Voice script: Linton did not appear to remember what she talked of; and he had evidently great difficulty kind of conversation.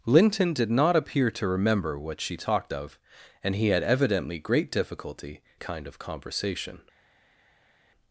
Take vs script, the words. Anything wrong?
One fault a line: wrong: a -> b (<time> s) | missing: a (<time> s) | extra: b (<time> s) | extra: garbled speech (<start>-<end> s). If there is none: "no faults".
no faults